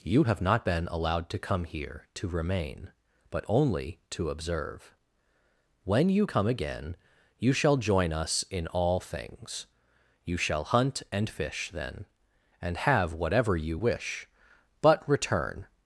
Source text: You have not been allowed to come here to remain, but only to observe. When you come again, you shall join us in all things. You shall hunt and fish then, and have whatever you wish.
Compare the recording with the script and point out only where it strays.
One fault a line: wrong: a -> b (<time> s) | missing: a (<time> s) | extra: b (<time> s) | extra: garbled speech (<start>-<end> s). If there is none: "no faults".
extra: But return (14.8 s)